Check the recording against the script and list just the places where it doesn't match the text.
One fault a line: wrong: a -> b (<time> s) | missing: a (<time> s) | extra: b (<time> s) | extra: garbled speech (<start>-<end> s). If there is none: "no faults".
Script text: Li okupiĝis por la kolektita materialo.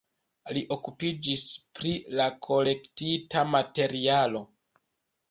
wrong: por -> pri (1.8 s)